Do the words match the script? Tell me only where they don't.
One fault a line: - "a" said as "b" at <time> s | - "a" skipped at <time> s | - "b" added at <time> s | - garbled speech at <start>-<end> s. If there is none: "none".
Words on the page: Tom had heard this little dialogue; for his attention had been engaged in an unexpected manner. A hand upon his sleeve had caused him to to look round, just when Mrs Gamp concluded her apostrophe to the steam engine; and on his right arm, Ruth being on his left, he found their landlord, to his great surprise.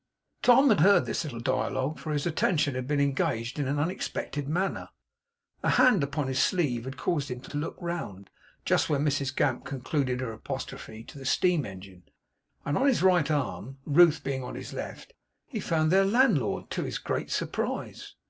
none